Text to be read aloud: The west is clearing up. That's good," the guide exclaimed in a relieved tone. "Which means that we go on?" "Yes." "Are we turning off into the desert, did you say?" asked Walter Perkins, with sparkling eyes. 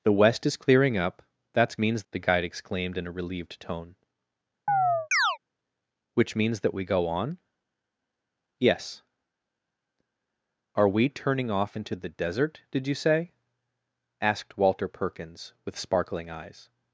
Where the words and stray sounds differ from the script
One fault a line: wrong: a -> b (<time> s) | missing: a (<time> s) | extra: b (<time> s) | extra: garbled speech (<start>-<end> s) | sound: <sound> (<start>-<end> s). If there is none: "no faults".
wrong: good -> means (1.8 s)
sound: chirp (4.7-5.4 s)